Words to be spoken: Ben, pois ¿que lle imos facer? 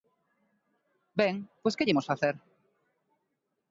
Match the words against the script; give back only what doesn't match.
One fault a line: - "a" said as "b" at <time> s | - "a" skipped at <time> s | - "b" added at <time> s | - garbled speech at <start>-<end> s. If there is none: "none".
none